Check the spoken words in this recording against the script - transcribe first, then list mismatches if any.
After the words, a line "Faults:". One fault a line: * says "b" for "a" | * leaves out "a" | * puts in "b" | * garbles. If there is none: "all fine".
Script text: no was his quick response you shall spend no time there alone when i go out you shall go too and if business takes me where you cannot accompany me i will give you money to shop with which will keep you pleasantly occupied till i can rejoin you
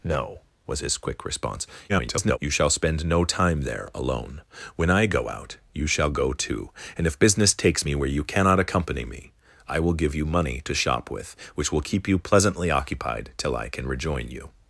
no was his quick response [garbled] you shall spend no time there alone when i go out you shall go too and if business takes me where you cannot accompany me i will give you money to shop with which will keep you pleasantly occupied till i can rejoin you
Faults:
* garbles